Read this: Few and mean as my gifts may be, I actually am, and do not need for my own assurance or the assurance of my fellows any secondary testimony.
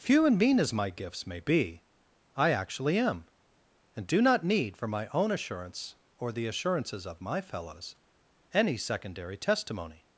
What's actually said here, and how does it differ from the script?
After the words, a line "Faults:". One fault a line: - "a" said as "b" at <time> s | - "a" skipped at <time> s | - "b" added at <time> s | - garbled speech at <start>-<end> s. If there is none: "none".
Few and mean as my gifts may be, I actually am, and do not need for my own assurance or the assurances of my fellows any secondary testimony.
Faults:
- "assurance" said as "assurances" at 6.5 s